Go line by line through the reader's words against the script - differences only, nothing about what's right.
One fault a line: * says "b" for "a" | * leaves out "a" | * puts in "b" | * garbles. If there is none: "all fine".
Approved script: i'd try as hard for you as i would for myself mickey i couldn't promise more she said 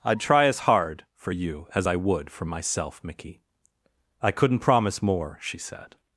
all fine